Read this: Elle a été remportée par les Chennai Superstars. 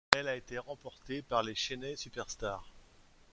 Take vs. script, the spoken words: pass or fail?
pass